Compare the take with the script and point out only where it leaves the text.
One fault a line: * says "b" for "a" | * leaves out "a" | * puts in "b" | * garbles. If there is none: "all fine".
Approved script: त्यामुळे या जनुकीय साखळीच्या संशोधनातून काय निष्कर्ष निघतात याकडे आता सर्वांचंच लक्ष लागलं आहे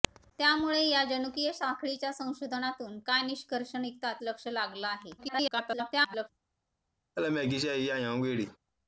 * leaves out "याकडे आता सर्वांचंच"
* garbles